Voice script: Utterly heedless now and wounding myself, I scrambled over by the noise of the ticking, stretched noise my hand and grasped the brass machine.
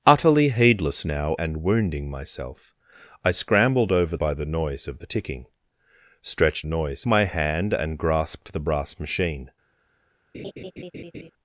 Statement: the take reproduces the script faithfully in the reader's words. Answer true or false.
true